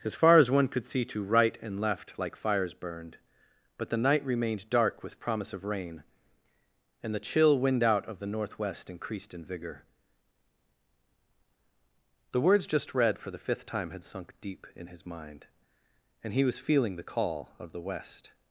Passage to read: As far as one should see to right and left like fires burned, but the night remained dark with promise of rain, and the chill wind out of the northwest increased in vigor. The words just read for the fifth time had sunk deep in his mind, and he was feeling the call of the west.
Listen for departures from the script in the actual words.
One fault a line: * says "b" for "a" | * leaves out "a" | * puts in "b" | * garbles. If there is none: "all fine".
* says "could" for "should"